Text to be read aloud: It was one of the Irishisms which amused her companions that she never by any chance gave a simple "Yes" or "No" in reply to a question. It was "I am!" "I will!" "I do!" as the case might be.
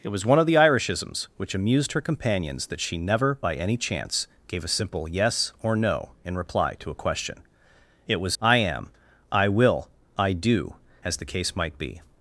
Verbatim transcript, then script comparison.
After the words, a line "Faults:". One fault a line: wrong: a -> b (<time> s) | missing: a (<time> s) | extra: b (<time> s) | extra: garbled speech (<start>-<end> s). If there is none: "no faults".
It was one of the Irishisms which amused her companions that she never by any chance gave a simple "Yes" or "No" in reply to a question. It was "I am!" "I will!" "I do!" as the case might be.
Faults:
no faults